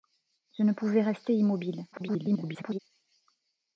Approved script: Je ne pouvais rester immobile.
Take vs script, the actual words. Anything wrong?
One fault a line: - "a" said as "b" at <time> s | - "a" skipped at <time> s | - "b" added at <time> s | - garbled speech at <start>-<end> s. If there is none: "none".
- garbled speech at 1.9-2.8 s